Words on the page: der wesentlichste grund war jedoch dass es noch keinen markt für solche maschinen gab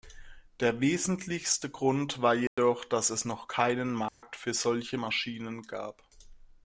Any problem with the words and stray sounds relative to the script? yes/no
yes